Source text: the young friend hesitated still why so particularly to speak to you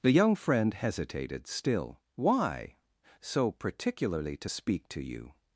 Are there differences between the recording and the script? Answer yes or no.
no